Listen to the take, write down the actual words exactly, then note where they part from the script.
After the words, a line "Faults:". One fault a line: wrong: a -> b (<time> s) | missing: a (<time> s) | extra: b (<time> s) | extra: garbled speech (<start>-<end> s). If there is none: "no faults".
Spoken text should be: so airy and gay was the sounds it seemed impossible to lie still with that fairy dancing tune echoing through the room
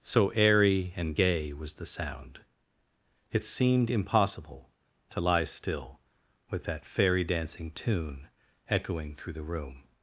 so airy and gay was the sound it seemed impossible to lie still with that fairy dancing tune echoing through the room
Faults:
wrong: sounds -> sound (1.8 s)